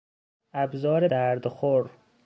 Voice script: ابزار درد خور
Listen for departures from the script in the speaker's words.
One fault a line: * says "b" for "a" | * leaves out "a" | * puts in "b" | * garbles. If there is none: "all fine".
all fine